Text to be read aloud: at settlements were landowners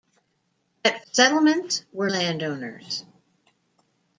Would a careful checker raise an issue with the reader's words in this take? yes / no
no